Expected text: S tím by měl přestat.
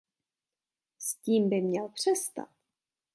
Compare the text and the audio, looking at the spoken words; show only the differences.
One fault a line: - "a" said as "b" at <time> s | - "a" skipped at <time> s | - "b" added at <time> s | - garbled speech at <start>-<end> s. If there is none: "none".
none